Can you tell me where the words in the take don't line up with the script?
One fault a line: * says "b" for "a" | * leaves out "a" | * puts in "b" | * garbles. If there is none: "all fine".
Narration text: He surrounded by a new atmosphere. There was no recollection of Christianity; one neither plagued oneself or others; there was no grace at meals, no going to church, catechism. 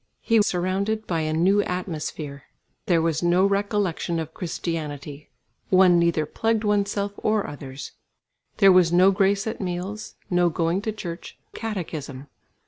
all fine